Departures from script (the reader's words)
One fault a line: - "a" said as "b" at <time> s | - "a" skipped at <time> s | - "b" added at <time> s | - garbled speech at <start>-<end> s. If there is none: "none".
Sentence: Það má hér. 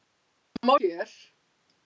none